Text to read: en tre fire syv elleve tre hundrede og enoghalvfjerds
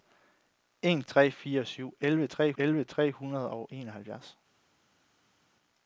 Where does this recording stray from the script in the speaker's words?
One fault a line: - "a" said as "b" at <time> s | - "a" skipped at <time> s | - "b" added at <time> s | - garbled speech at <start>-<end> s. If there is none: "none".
- "elleve tre" added at 2.6 s